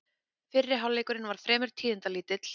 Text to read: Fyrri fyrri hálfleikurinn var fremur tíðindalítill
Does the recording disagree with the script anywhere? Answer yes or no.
yes